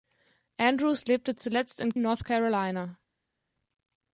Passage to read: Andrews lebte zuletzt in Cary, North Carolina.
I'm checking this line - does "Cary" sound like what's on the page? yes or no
no